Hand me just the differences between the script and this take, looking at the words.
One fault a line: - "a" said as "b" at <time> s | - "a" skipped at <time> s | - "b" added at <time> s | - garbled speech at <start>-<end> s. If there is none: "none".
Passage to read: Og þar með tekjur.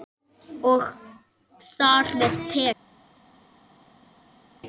none